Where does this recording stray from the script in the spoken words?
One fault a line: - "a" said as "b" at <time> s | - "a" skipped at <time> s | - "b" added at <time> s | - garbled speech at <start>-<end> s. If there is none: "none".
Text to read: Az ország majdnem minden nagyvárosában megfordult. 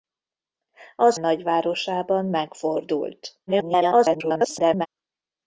- "ország majdnem minden" skipped at 1.2 s
- garbled speech at 3.5-4.9 s